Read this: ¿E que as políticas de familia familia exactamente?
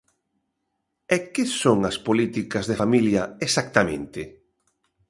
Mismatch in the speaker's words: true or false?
true